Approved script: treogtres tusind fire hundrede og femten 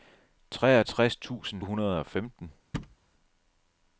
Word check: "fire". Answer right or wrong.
wrong